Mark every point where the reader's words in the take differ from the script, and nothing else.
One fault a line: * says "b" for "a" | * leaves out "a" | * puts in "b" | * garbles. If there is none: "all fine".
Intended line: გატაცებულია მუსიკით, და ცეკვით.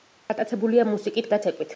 all fine